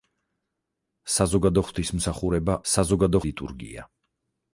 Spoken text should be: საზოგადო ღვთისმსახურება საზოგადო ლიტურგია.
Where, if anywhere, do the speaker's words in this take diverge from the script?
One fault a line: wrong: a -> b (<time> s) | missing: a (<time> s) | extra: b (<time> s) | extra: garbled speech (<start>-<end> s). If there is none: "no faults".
no faults